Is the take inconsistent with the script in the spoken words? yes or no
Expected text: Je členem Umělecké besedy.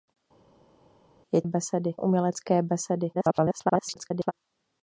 yes